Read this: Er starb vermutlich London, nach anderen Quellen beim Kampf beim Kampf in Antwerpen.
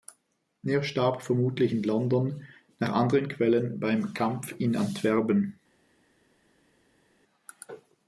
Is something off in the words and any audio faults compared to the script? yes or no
yes